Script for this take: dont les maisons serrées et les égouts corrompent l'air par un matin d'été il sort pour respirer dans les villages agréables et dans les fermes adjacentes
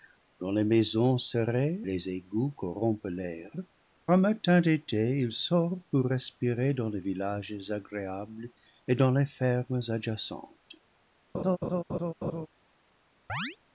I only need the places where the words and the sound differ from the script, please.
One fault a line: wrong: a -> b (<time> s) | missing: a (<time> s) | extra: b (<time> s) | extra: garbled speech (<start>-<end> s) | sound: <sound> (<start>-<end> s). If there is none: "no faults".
missing: et (1.8 s)
missing: par (3.5 s)
sound: laugh (11.3-12.5 s)
sound: chirp (13.3-13.6 s)